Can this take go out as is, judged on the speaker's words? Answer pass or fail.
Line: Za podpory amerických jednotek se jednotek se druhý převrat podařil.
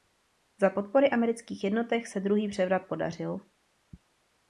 fail